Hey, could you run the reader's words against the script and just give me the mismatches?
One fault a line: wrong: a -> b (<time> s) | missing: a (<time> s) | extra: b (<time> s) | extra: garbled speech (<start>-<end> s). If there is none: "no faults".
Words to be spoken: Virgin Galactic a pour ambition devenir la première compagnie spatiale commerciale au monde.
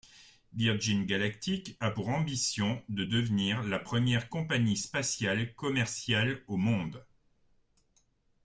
extra: de (2.9 s)